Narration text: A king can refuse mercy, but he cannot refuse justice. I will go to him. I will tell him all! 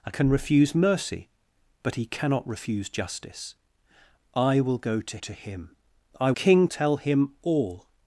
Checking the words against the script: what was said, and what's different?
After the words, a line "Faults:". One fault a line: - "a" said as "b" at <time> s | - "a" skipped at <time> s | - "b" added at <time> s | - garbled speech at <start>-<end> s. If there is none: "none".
A can refuse mercy, but he cannot refuse justice. I will go to to him. I king tell him all!
Faults:
- "king" skipped at 0.1 s
- "to" added at 5.2 s
- "will" said as "king" at 6.3 s